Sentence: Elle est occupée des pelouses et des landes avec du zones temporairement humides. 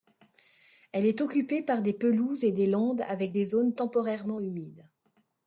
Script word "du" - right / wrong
wrong